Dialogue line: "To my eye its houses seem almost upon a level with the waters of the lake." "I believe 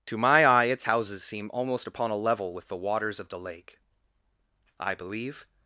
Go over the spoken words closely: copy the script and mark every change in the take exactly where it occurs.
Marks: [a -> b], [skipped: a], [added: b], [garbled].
"To my eye its houses seem almost upon a level with the waters of the lake." "I believe